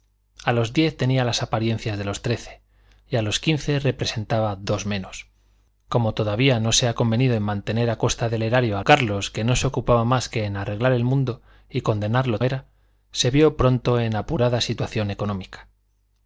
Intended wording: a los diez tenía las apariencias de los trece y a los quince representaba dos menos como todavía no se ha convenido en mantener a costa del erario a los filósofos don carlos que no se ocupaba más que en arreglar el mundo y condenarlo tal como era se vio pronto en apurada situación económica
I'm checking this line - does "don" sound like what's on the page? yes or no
no